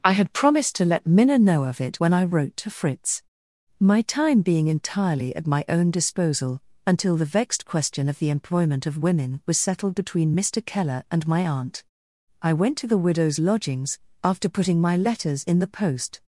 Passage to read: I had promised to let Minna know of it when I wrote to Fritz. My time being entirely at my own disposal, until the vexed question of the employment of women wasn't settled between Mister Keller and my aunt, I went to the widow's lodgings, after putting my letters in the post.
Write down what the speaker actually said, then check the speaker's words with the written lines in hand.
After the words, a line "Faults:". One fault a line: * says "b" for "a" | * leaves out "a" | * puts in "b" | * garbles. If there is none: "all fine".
I had promised to let Minna know of it when I wrote to Fritz. My time being entirely at my own disposal, until the vexed question of the employment of women was settled between Mister Keller and my aunt, I went to the widow's lodgings, after putting my letters in the post.
Faults:
* says "was" for "wasn't"